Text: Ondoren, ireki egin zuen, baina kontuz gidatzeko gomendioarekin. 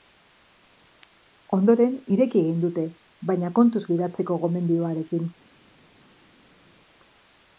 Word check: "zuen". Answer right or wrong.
wrong